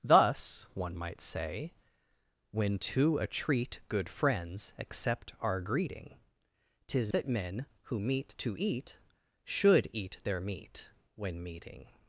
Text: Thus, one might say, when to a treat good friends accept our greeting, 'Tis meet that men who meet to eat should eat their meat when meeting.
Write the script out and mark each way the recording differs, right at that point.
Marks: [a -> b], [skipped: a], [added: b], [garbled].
Thus, one might say, when to a treat good friends accept our greeting, 'Tis [skipped: meet] that men who meet to eat should eat their meat when meeting.